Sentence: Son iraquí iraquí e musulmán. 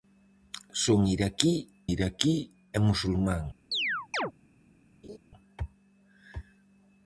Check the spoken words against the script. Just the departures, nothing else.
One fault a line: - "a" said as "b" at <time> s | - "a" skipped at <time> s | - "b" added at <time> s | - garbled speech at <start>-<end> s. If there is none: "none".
none